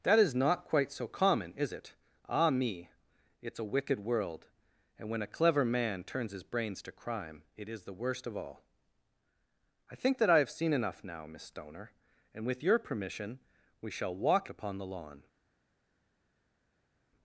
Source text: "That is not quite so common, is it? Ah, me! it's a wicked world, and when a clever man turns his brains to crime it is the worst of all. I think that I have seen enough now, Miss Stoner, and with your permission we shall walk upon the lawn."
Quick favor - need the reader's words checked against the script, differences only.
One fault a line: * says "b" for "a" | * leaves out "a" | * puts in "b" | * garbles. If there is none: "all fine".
all fine